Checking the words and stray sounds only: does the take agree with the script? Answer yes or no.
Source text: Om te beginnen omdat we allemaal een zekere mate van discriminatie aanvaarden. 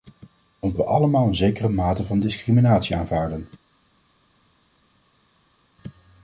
no